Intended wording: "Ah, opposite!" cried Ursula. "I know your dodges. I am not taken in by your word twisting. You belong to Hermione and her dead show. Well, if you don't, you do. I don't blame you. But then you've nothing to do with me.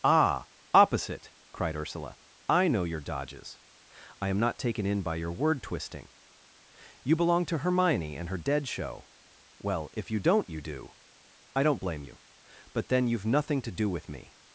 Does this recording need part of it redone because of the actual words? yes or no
no